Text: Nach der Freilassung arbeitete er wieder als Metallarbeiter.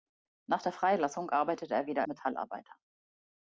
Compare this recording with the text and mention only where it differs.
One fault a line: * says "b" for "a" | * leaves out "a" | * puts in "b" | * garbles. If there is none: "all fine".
* leaves out "als"